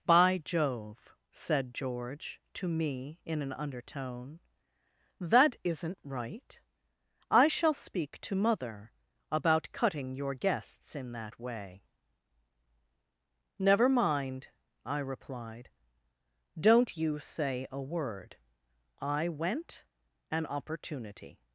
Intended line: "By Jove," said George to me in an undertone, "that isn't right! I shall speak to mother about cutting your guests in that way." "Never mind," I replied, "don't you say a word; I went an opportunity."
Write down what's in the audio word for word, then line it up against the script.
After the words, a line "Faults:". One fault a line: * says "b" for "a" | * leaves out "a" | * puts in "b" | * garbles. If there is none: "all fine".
"By Jove," said George to me in an undertone, "that isn't right! I shall speak to mother about cutting your guests in that way." "Never mind," I replied, "don't you say a word; I went an opportunity."
Faults:
all fine